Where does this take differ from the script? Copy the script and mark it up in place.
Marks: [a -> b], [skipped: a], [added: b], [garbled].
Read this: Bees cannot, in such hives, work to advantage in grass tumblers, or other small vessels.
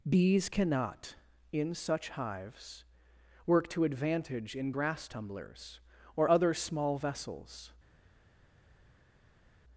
Bees cannot, in such hives, work to advantage in grass tumblers, or other small vessels.